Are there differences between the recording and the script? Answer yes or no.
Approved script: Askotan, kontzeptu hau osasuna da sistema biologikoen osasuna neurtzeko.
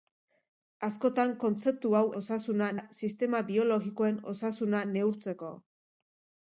no